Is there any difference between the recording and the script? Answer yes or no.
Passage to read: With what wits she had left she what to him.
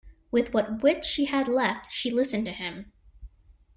yes